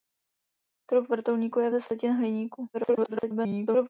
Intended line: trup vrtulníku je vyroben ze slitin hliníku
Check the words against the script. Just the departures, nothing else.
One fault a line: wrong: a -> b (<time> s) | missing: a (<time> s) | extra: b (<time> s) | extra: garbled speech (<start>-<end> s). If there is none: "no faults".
missing: vyroben (1.7 s)
extra: garbled speech (2.7-3.9 s)